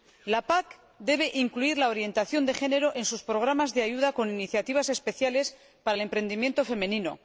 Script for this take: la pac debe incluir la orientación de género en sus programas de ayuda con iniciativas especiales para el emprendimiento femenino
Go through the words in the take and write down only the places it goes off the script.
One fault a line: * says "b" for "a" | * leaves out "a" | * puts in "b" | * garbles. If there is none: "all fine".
all fine